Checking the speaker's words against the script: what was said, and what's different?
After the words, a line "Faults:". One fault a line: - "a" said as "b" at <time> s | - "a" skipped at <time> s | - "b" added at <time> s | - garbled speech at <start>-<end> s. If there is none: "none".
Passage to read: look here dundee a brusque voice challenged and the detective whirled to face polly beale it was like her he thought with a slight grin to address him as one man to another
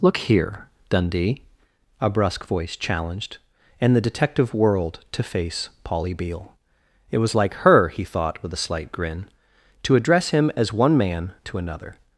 look here dundee a brusque voice challenged and the detective whirled to face polly beale it was like her he thought with a slight grin to address him as one man to another
Faults:
none